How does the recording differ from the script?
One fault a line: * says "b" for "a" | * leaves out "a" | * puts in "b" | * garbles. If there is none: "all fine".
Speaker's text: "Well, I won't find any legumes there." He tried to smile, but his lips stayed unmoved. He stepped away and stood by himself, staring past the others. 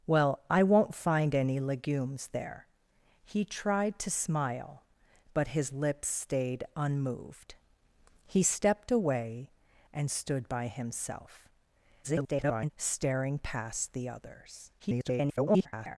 * garbles
* garbles